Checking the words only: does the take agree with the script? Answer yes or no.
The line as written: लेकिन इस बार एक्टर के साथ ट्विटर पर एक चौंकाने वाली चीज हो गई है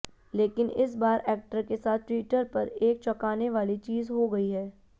yes